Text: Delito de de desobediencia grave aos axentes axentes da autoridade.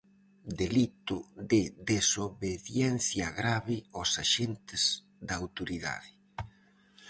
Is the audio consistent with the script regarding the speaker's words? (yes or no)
no